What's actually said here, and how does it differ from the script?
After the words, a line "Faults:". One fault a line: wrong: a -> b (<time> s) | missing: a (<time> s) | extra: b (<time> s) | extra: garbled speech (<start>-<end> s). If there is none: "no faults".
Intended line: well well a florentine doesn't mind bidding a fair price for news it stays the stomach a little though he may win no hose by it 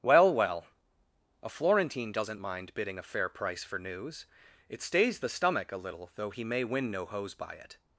well well a florentine doesn't mind bidding a fair price for news it stays the stomach a little though he may win no hose by it
Faults:
no faults